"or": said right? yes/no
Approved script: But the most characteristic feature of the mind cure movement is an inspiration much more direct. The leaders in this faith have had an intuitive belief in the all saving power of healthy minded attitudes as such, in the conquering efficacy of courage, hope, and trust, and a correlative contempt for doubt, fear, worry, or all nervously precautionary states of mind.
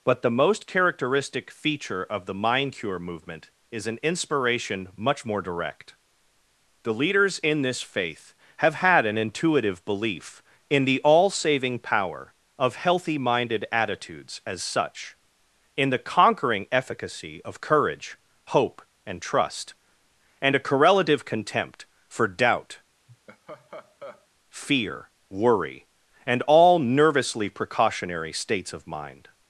no